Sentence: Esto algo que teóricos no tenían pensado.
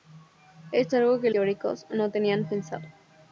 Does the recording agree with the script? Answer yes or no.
yes